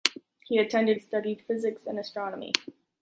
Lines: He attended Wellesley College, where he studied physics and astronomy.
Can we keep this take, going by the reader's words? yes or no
no